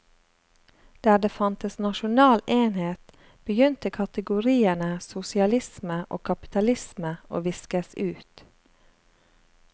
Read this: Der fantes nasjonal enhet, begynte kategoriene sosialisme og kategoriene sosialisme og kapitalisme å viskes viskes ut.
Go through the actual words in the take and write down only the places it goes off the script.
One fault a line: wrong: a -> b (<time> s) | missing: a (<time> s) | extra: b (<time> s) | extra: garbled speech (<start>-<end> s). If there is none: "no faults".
extra: det (1.2 s)
missing: kategoriene sosialisme og (6.2 s)
missing: viskes (7.9 s)